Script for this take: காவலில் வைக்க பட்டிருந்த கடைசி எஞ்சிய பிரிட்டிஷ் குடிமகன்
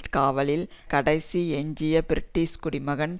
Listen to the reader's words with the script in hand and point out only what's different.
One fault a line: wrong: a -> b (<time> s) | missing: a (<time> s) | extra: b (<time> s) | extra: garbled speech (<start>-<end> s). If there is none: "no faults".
missing: வைக்க பட்டிருந்த (0.7 s)